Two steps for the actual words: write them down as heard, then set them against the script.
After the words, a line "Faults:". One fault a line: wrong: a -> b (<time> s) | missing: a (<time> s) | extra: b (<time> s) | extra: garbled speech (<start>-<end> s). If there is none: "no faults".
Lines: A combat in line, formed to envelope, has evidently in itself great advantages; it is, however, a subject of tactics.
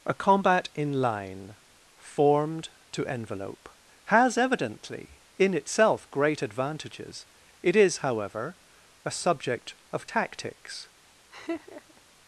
A combat in line, formed to envelope, has evidently in itself great advantages; it is, however, a subject of tactics.
Faults:
no faults